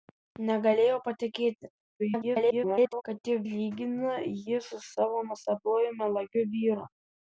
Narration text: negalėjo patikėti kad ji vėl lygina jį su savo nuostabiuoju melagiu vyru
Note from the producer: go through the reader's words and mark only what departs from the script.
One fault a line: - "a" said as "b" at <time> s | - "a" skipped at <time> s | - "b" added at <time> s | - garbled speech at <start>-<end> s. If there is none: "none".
- garbled speech at 2.0-3.0 s
- "vėl" skipped at 3.4 s